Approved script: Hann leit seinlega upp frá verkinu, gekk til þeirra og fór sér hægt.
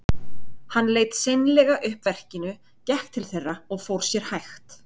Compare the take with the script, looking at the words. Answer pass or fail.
fail